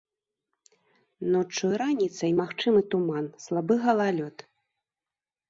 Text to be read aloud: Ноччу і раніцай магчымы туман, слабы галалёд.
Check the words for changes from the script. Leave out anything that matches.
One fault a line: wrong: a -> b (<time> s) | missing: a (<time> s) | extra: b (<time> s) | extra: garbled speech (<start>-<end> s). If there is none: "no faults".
no faults